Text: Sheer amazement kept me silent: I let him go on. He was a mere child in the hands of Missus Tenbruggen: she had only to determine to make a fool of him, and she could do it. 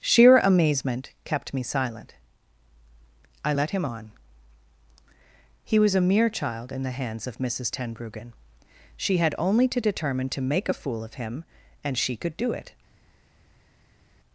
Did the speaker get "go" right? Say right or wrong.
wrong